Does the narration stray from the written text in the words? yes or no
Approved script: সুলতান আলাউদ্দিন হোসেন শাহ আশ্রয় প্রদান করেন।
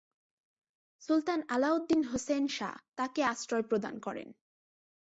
yes